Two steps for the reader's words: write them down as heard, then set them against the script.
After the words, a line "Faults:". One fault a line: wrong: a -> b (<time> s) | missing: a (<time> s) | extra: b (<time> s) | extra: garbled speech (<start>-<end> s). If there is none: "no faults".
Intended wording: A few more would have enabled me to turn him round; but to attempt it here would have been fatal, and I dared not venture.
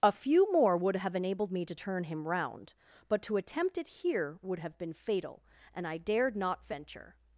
A few more would have enabled me to turn him round; but to attempt it here would have been fatal, and I dared not venture.
Faults:
no faults